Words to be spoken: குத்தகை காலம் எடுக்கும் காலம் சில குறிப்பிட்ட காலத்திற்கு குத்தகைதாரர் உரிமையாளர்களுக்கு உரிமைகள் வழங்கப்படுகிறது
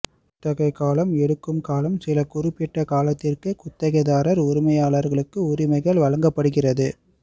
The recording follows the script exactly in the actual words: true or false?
true